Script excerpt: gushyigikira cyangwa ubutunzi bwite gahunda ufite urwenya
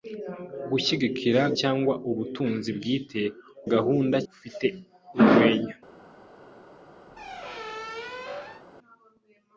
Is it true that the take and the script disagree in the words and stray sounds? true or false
true